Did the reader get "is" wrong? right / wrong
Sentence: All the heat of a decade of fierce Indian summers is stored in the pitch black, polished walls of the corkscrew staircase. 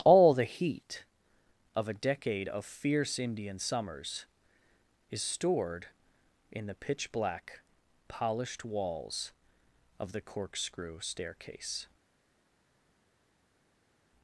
right